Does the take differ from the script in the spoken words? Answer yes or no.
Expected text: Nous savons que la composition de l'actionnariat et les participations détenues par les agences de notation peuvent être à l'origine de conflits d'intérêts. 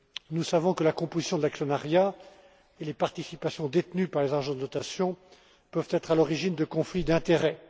no